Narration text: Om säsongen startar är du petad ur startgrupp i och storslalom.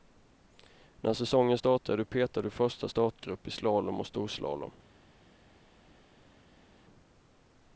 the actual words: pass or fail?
fail